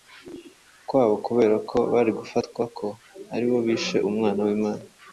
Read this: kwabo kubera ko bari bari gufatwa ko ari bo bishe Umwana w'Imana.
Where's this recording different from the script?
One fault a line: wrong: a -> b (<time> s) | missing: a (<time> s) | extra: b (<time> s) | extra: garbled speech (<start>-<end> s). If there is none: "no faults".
missing: bari (2.1 s)